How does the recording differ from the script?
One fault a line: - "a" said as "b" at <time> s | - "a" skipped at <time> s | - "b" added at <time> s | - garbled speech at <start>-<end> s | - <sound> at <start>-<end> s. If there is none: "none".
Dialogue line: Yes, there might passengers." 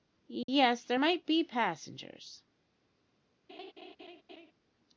- dropout at 0.4-0.5 s
- "be" added at 1.3 s
- laugh at 3.5-4.5 s